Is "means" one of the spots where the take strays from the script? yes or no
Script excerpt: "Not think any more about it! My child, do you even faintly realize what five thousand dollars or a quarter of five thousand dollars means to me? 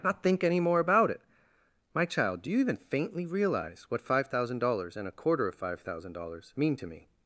yes